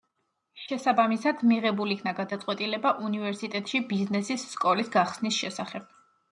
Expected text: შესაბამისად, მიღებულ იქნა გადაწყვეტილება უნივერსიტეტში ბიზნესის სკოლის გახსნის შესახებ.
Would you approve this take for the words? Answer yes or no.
yes